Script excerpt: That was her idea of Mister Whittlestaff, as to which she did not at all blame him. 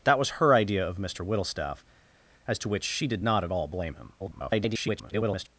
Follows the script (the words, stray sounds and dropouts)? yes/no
no